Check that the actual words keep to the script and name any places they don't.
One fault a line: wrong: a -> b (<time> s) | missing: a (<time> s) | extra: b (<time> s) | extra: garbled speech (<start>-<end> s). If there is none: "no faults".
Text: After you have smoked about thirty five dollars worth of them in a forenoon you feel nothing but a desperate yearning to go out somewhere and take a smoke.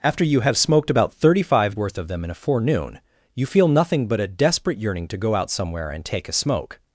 missing: dollars (1.8 s)